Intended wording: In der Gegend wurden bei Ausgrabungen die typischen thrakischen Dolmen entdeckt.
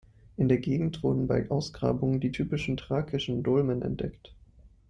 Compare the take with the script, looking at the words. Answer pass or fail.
pass